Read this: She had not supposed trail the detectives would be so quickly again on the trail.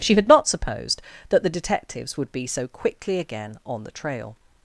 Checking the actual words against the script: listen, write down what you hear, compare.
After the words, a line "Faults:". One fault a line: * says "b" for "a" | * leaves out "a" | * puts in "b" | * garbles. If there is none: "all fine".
She had not supposed that the detectives would be so quickly again on the trail.
Faults:
* says "that" for "trail"